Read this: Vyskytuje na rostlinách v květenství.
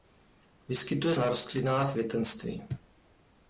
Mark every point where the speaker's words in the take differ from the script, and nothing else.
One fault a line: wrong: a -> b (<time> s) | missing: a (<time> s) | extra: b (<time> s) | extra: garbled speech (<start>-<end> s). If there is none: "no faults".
no faults